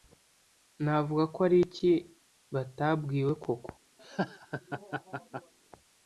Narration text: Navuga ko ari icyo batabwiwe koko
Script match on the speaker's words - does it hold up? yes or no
no